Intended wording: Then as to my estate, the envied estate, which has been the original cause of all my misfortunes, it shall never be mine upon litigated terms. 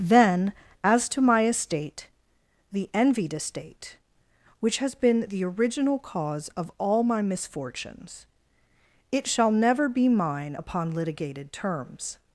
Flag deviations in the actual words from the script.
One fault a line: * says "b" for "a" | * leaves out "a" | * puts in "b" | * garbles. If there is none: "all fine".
all fine